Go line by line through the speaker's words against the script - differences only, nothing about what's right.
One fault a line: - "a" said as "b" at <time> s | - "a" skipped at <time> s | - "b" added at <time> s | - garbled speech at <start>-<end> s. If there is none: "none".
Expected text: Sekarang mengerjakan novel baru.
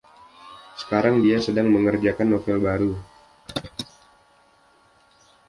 - "dia sedang" added at 1.2 s